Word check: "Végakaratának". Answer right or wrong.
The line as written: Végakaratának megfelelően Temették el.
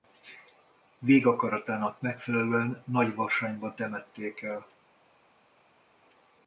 right